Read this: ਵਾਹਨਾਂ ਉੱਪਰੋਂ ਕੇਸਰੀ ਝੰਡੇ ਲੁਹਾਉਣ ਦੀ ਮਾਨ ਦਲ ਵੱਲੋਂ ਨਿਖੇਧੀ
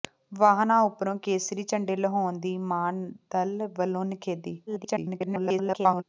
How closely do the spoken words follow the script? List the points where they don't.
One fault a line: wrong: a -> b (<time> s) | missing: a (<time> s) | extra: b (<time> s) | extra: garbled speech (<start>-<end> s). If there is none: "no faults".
extra: garbled speech (4.7-6.0 s)